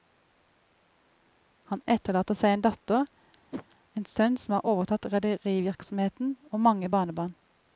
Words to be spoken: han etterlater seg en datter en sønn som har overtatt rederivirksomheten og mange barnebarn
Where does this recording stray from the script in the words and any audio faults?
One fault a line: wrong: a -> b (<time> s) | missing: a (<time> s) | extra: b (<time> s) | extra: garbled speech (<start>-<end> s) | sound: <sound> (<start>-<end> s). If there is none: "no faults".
sound: whoosh (3.5-3.7 s)